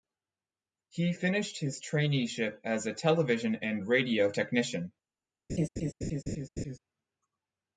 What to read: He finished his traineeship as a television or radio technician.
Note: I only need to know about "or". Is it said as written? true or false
false